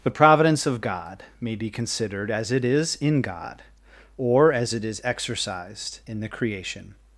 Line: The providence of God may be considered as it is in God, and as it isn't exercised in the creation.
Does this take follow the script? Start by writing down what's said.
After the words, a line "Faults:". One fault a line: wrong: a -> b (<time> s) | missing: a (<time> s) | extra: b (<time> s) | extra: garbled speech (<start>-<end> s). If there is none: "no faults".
The providence of God may be considered as it is in God, or as it is exercised in the creation.
Faults:
wrong: and -> or (4.2 s)
wrong: isn't -> is (4.8 s)